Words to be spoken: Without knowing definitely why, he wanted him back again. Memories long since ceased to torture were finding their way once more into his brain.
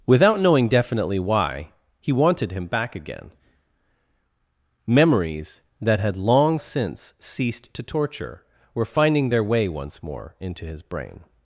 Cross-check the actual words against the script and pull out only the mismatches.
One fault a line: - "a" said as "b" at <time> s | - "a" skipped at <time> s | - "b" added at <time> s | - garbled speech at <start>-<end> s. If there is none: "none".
- "that had" added at 5.8 s